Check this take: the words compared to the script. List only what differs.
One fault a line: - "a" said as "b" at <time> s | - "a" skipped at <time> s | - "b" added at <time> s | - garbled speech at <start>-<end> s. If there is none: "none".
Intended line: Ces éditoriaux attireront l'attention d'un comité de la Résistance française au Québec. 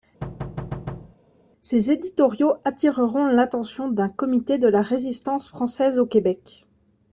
none